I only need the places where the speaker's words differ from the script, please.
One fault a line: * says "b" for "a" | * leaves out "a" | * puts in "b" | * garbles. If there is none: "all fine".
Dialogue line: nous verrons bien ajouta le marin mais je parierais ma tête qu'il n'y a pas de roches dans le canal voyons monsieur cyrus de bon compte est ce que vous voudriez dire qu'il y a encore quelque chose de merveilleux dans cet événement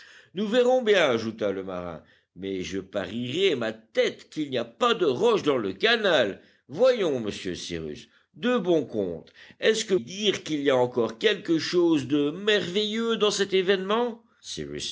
* leaves out "vous voudriez"